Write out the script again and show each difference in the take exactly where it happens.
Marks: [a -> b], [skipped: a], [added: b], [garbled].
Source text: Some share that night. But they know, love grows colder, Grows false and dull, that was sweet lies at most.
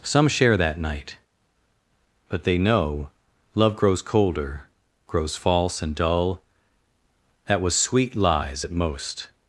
Some share that night. But they know, love grows colder, Grows false and dull, that was sweet lies at most.